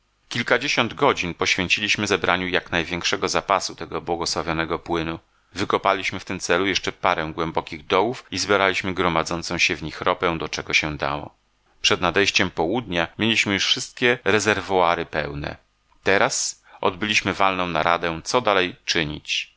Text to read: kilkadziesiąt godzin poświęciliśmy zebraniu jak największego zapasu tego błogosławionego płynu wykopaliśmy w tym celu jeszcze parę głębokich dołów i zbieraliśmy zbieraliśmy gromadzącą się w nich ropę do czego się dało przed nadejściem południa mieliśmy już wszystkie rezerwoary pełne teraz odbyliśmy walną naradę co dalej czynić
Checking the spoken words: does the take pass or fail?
fail